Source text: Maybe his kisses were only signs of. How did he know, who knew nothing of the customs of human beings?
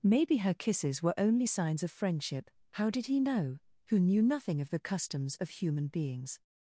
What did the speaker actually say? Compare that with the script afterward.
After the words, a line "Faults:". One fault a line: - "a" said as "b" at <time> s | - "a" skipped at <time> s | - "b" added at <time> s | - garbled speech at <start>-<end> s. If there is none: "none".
Maybe her kisses were only signs of friendship. How did he know, who knew nothing of the customs of human beings?
Faults:
- "his" said as "her" at 0.4 s
- "friendship" added at 1.9 s